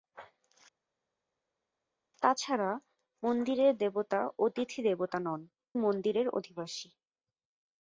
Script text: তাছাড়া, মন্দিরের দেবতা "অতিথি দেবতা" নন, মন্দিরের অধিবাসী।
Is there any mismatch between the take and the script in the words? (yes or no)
no